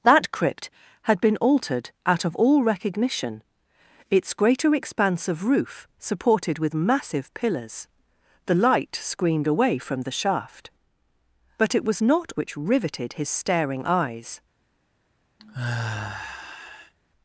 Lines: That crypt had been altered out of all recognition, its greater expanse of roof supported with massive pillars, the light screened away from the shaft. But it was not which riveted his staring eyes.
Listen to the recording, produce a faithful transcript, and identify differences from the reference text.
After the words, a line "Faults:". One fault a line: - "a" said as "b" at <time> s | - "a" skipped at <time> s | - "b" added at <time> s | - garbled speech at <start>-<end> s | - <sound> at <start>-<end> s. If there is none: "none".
That crypt had been altered out of all recognition, its greater expanse of roof supported with massive pillars, the light screened away from the shaft. But it was not which riveted his staring eyes.
Faults:
- sigh at 15.4-16.9 s